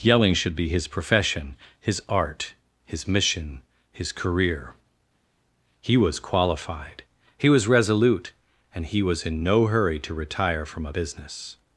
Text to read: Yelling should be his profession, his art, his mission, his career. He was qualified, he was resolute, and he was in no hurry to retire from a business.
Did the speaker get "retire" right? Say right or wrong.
right